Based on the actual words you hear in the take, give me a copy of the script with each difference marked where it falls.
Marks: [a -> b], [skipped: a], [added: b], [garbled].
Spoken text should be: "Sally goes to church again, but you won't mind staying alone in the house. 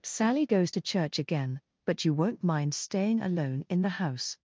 "Sally goes to church again, but you won't mind staying alone in the house.